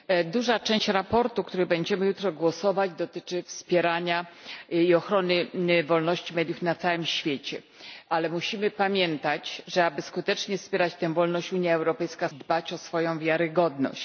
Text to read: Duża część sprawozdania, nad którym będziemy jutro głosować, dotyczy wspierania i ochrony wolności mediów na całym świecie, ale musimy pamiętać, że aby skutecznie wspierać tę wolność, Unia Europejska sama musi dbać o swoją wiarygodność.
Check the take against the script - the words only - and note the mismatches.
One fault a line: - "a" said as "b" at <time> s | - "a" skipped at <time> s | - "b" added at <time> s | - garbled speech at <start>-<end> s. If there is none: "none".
- "sama musi" skipped at 12.3 s